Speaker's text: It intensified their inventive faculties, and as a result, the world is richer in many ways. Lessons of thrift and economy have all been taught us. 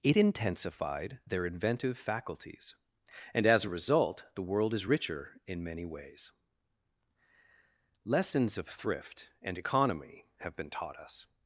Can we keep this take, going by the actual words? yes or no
no